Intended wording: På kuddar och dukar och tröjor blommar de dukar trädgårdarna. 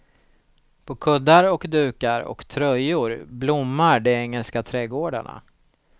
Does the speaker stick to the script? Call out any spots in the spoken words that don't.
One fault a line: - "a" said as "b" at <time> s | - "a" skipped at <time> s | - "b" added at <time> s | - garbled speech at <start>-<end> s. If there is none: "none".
- "dukar" said as "engelska" at 4.1 s